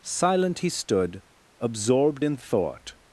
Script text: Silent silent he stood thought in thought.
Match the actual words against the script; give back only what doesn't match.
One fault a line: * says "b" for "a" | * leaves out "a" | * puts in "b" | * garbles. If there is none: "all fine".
* leaves out "silent"
* says "absorbed" for "thought"